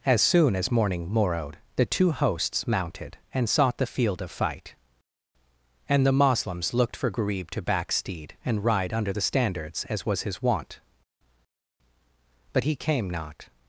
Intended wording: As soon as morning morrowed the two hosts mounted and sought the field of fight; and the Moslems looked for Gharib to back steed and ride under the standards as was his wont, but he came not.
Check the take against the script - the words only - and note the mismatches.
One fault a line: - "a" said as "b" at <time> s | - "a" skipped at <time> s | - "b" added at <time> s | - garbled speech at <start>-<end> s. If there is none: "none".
none